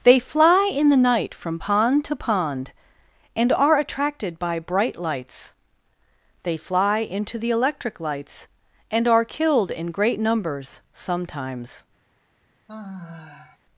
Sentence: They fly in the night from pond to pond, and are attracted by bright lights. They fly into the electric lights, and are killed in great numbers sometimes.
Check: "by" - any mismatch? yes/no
no